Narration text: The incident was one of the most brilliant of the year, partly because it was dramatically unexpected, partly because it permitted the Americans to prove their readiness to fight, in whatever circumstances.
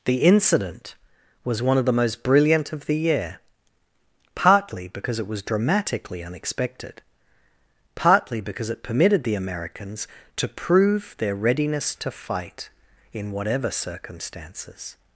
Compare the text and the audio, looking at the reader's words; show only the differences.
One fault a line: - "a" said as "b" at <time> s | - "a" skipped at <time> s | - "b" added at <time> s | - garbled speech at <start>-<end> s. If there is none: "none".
none